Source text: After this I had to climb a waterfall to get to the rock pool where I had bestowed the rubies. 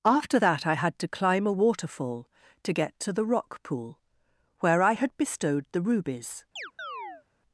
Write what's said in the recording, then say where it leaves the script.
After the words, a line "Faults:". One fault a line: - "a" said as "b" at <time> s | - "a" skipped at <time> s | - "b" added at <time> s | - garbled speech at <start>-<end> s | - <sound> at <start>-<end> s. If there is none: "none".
After that I had to climb a waterfall to get to the rock pool where I had bestowed the rubies.
Faults:
- "this" said as "that" at 0.4 s
- chirp at 6.6-7.2 s